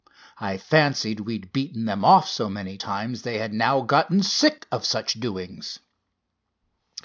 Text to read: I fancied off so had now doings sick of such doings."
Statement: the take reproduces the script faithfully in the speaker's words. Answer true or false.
false